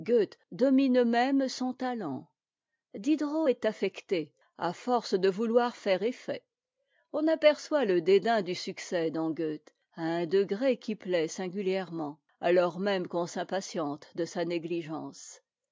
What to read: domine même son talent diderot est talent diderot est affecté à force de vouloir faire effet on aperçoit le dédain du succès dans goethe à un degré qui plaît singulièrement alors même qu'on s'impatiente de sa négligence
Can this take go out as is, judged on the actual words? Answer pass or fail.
fail